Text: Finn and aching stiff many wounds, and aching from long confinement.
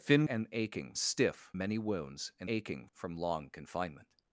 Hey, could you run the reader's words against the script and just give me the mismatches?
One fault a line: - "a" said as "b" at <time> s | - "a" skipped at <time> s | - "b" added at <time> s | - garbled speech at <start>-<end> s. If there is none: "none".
none